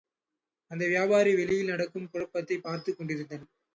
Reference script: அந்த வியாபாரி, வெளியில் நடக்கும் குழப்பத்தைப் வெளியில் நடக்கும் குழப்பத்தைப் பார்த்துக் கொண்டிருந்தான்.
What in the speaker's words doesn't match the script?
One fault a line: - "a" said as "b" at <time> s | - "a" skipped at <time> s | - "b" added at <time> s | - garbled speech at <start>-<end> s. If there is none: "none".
- "வெளியில் நடக்கும் குழப்பத்தைப்" skipped at 2.6 s